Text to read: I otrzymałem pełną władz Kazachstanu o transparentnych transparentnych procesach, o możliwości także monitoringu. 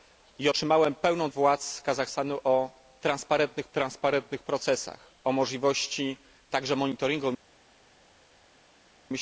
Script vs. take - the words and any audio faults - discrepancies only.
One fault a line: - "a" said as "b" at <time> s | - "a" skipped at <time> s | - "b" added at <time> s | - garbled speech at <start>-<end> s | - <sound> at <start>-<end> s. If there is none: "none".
none